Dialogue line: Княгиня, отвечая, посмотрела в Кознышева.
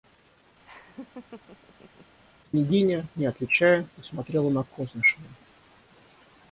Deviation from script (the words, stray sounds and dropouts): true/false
true